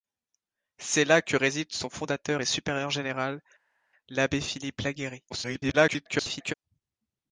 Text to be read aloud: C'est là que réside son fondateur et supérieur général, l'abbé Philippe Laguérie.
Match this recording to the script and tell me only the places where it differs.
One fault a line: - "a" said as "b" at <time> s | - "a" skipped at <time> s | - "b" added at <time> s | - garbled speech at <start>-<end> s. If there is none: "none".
- garbled speech at 5.3-6.5 s